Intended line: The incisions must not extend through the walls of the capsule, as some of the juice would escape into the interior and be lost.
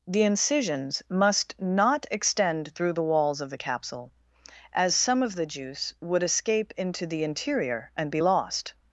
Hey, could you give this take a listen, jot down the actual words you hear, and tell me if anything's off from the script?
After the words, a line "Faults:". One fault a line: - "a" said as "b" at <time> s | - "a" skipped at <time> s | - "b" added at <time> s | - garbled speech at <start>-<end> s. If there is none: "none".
The incisions must not extend through the walls of the capsule, as some of the juice would escape into the interior and be lost.
Faults:
none